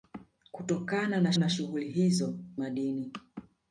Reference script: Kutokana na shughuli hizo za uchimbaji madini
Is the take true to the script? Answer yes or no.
no